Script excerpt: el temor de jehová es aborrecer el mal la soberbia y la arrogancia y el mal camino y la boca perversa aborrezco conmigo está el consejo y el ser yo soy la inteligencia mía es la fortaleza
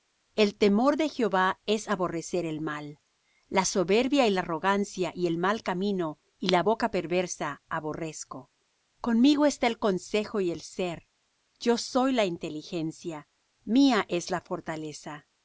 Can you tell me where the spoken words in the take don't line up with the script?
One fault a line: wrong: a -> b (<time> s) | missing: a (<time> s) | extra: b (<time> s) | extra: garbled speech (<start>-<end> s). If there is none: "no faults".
no faults